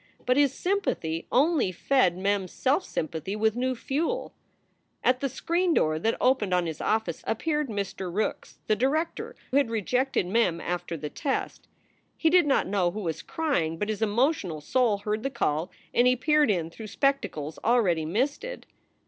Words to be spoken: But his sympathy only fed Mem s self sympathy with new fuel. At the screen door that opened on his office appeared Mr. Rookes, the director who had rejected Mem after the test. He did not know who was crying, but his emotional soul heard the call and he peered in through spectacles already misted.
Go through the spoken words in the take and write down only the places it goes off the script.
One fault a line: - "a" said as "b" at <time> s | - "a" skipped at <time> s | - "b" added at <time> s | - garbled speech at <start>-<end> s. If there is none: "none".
- "who" skipped at 9.3 s